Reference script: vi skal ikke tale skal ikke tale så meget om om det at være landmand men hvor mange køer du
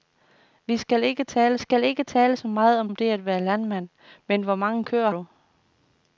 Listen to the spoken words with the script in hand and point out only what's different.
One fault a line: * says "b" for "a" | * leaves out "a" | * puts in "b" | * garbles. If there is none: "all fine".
all fine